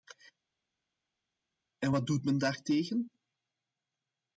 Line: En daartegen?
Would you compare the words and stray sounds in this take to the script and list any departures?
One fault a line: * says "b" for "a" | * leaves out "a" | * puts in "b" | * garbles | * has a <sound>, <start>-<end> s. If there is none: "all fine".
* puts in "wat doet men"